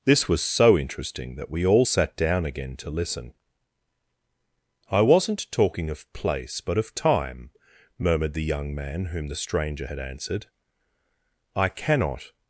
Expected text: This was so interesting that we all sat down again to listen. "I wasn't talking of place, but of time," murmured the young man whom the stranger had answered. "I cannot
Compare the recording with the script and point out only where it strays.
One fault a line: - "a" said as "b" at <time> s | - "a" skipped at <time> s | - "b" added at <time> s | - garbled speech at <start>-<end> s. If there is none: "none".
none